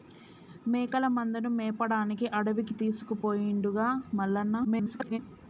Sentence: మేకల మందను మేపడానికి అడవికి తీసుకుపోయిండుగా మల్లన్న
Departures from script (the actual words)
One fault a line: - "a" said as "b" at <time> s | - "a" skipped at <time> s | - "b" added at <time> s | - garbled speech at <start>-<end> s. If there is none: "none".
- garbled speech at 4.6-5.2 s